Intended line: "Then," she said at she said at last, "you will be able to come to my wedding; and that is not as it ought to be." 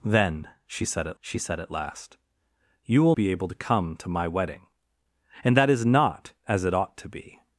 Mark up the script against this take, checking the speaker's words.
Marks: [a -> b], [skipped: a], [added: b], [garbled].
"Then," she said at she said at last, "you will be able to come to my wedding; and that is not as it ought to be."